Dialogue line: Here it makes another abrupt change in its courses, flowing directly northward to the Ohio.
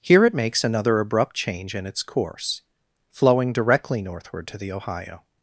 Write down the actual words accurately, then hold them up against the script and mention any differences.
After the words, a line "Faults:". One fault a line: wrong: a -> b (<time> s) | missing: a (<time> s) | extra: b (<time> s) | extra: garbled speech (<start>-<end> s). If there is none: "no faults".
Here it makes another abrupt change in its course, flowing directly northward to the Ohio.
Faults:
wrong: courses -> course (2.0 s)